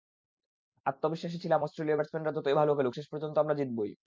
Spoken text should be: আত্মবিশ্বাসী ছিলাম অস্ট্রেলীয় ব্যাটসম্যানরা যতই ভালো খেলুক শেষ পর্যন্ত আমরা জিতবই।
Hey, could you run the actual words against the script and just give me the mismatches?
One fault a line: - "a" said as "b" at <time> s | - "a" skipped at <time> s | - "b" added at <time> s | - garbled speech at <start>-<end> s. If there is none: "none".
none